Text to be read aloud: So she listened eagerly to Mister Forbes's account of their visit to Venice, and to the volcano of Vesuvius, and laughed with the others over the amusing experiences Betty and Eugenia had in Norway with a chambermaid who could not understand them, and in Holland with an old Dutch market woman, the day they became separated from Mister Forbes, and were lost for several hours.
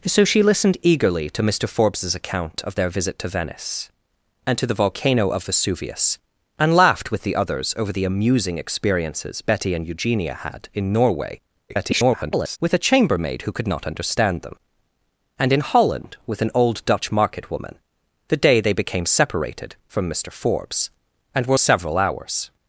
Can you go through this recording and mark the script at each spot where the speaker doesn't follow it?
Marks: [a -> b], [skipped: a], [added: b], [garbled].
So she listened eagerly to Mister Forbes's account of their visit to Venice, and to the volcano of Vesuvius, and laughed with the others over the amusing experiences Betty and Eugenia had in Norway [garbled] with a chambermaid who could not understand them, and in Holland with an old Dutch market woman, the day they became separated from Mister Forbes, and were [skipped: lost for] several hours.